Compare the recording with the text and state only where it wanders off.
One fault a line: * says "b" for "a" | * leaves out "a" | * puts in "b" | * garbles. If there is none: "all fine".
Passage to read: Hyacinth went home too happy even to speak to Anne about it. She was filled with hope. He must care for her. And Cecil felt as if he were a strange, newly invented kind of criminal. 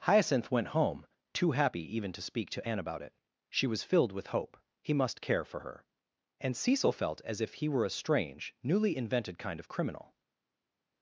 all fine